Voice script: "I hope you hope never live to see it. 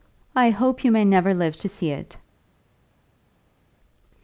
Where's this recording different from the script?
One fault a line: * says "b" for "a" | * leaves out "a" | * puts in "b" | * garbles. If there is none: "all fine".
* says "may" for "hope"